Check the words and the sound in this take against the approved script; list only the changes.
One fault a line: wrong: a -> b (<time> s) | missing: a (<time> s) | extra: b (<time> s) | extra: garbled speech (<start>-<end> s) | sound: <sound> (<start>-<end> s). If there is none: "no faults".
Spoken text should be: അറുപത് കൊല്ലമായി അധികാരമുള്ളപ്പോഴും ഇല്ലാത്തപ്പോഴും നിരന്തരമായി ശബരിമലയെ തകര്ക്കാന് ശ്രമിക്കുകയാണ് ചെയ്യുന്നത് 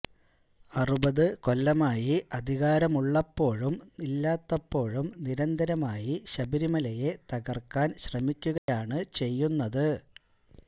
sound: dropout (8.6-8.7 s)